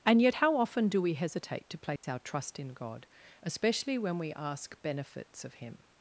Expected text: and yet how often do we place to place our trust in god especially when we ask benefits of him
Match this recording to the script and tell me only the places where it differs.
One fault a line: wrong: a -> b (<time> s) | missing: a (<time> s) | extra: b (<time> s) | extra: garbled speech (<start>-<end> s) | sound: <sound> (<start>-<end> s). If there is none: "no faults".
wrong: place -> hesitate (1.1 s)
sound: dropout (2.0-2.0 s)